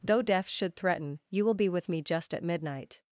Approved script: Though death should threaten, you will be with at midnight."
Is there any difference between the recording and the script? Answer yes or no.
yes